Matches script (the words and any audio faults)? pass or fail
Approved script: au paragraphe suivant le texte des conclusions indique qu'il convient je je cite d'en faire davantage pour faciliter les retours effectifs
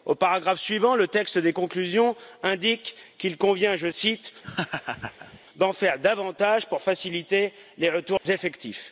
fail